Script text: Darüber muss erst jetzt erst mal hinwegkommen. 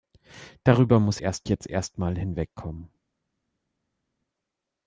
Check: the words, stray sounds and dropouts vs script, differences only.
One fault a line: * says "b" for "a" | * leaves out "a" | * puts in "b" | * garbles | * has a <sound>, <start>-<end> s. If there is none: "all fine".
all fine